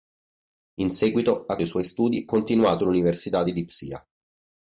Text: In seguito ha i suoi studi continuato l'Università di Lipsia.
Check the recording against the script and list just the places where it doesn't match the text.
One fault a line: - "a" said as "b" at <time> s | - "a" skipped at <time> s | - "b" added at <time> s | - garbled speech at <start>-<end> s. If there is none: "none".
none